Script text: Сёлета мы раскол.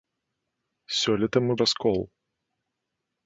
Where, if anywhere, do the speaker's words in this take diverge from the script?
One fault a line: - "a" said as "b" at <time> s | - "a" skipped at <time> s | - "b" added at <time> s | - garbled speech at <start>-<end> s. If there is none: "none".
none